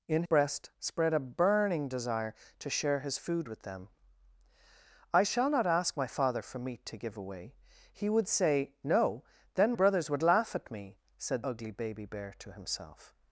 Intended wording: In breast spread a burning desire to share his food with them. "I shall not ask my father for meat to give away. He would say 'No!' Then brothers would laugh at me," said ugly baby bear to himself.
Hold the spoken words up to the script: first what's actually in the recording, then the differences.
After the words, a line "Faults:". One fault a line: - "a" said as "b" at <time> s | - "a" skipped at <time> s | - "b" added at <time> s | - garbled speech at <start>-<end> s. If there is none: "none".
In breast spread a burning desire to share his food with them. "I shall not ask my father for meat to give away. He would say 'No!' Then brothers would laugh at me," said ugly baby bear to himself.
Faults:
none